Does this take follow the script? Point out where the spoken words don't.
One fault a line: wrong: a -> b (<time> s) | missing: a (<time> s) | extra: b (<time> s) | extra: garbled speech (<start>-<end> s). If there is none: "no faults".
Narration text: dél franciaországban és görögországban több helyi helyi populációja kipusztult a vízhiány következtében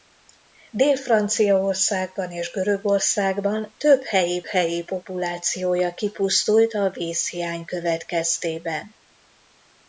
no faults